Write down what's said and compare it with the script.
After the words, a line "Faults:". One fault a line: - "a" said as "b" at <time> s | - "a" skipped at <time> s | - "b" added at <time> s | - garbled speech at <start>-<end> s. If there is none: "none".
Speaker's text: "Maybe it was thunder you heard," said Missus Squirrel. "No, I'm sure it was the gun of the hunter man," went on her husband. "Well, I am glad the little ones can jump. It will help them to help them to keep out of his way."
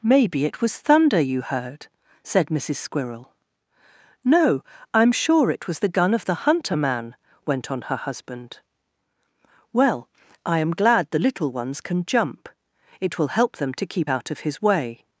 "Maybe it was thunder you heard," said Missus Squirrel. "No, I'm sure it was the gun of the hunter man," went on her husband. "Well, I am glad the little ones can jump. It will help them to keep out of his way."
Faults:
- "help them to" skipped at 13.9 s